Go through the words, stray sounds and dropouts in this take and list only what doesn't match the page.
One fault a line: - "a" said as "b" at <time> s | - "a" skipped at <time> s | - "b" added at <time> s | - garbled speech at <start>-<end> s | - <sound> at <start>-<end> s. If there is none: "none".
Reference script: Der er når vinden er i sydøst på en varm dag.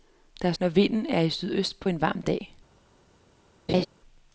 - laugh at 3.7-3.9 s